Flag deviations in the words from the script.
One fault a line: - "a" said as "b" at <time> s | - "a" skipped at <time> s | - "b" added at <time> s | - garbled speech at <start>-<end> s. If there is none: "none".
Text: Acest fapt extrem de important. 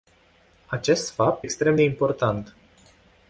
none